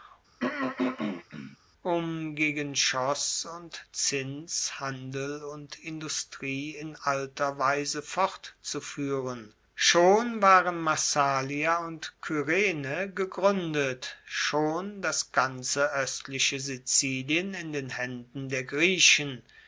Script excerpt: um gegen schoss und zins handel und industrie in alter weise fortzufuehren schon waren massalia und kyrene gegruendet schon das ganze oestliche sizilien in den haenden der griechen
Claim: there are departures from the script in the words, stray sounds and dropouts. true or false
true